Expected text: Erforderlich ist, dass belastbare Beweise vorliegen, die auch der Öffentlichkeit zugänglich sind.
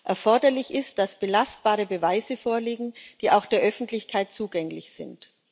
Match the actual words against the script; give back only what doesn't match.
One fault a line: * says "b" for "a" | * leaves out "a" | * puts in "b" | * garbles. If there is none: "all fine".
all fine